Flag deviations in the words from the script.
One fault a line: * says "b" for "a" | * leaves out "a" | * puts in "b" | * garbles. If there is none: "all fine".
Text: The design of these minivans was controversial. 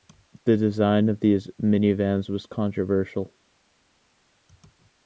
all fine